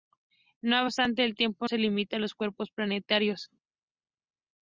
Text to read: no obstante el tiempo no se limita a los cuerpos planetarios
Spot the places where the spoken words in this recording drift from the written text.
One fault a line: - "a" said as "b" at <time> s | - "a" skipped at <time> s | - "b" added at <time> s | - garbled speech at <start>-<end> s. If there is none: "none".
- "no" skipped at 1.7 s